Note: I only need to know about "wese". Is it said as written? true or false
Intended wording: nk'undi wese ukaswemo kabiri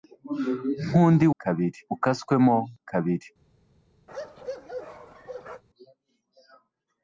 false